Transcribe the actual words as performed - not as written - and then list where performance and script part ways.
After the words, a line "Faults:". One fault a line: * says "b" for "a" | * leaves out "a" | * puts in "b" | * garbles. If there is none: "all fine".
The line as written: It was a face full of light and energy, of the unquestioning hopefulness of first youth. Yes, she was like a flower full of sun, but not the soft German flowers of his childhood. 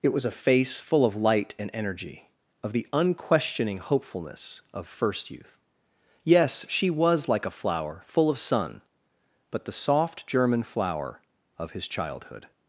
It was a face full of light and energy, of the unquestioning hopefulness of first youth. Yes, she was like a flower full of sun, but the soft German flower of his childhood.
Faults:
* leaves out "not"
* says "flower" for "flowers"